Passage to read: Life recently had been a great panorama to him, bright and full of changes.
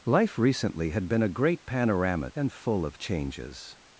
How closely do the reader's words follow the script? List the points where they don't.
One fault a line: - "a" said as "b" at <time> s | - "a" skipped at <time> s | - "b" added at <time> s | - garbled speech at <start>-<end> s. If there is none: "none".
- "to him bright" skipped at 2.3 s